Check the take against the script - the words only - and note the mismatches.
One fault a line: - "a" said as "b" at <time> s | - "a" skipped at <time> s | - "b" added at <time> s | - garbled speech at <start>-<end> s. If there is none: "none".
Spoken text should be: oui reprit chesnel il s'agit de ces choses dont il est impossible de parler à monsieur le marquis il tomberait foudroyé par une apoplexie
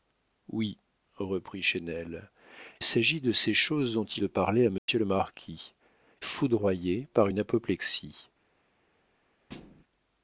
- "il" skipped at 2.3 s
- "est impossible" skipped at 4.2 s
- "il tomberait" skipped at 5.7 s